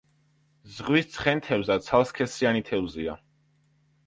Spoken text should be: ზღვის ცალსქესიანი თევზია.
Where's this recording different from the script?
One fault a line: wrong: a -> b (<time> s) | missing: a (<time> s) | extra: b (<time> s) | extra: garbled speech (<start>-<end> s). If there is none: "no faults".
extra: ცხენთევზა (1.2 s)